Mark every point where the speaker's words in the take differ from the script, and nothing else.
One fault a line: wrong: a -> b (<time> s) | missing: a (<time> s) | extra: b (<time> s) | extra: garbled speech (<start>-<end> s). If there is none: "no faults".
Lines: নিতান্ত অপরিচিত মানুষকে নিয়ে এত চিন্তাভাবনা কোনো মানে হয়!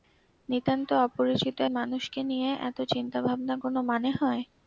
no faults